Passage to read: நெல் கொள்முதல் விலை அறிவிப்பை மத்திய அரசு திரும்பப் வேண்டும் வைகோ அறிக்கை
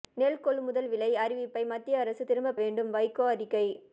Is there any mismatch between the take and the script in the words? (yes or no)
no